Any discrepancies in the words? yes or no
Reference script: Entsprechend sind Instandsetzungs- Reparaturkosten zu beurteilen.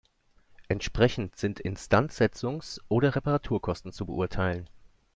yes